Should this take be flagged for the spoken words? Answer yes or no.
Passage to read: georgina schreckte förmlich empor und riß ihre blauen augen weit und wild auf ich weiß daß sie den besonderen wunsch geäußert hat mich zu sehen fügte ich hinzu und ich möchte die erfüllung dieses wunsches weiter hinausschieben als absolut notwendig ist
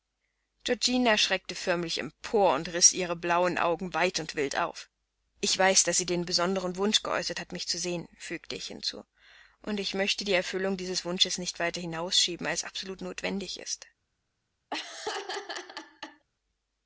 yes